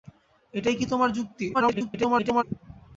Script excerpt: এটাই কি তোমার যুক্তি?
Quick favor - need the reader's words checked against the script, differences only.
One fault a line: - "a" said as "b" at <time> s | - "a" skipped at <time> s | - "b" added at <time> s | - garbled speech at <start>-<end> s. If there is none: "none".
- garbled speech at 1.5-2.4 s